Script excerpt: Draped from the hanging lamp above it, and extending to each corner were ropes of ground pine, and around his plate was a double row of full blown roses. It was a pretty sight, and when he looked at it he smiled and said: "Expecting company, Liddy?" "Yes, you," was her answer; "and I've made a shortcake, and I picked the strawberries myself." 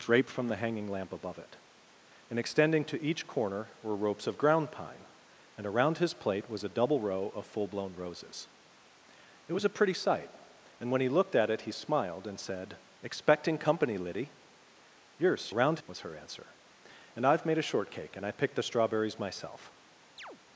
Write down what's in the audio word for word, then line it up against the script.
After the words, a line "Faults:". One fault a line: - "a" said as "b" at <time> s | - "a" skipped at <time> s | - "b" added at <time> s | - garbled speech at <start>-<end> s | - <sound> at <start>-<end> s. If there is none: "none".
Draped from the hanging lamp above it, and extending to each corner were ropes of ground pine, and around his plate was a double row of full blown roses. It was a pretty sight, and when he looked at it he smiled and said: "Expecting company, Liddy?" "Yes, around," was her answer; "and I've made a shortcake, and I picked the strawberries myself."
Faults:
- "you" said as "around" at 15.5 s
- chirp at 20.2-20.4 s